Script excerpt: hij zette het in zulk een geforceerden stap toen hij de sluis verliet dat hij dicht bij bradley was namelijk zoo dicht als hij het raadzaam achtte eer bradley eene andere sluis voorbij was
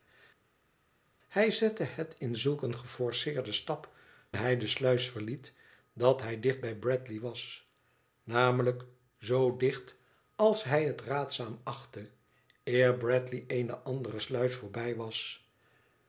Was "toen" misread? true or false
true